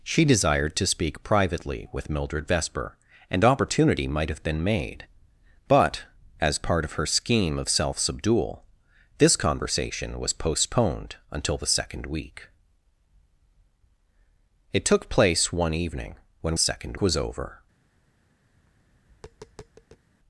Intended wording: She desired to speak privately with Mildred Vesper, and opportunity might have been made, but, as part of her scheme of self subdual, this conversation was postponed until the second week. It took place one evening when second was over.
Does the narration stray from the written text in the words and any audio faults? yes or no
yes